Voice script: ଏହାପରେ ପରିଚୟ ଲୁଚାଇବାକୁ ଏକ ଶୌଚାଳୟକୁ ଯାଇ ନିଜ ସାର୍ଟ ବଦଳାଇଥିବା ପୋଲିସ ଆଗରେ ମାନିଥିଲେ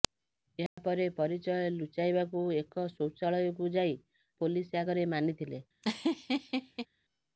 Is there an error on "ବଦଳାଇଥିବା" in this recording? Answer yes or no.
yes